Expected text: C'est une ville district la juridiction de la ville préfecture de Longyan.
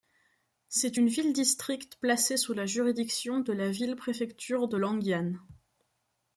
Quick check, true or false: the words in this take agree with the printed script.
false